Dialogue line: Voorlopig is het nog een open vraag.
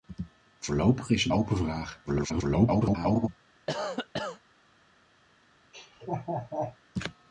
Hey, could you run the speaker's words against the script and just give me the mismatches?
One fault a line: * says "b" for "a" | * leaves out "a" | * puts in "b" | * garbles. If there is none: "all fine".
* leaves out "nog een"
* garbles